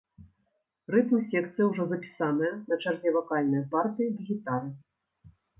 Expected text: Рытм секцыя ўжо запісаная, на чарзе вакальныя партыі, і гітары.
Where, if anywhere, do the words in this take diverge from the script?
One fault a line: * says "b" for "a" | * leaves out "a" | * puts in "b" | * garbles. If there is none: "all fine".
all fine